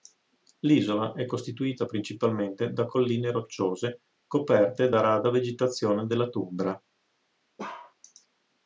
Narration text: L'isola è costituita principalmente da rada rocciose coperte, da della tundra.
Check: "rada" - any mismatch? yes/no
yes